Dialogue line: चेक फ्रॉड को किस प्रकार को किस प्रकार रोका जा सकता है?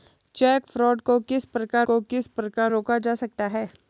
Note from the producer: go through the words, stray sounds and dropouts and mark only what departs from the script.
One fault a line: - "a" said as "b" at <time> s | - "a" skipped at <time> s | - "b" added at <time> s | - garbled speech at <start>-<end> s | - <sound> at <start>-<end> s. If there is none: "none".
none